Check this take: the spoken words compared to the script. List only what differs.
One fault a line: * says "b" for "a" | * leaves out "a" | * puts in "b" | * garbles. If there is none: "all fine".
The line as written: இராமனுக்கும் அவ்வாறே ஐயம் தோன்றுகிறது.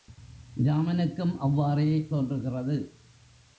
* leaves out "ஐயம்"